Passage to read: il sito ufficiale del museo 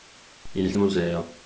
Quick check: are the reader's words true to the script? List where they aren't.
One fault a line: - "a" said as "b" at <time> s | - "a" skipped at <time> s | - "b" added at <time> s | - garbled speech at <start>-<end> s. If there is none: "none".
- "sito ufficiale del" skipped at 0.7 s